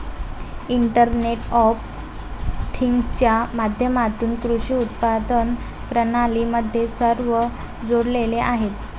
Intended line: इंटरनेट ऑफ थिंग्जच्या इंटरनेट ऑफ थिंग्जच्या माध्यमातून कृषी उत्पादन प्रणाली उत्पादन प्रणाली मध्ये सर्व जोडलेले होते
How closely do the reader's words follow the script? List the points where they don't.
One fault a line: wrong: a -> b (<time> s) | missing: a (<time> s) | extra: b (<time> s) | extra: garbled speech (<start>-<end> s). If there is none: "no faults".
missing: इंटरनेट ऑफ थिंग्जच्या (3.3 s)
missing: उत्पादन प्रणाली (6.4 s)
wrong: होते -> आहेत (8.4 s)